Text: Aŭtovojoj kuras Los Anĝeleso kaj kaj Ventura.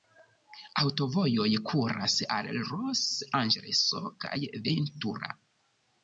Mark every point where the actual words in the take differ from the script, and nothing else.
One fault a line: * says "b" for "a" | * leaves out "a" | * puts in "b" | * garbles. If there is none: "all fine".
* puts in "al"
* leaves out "kaj"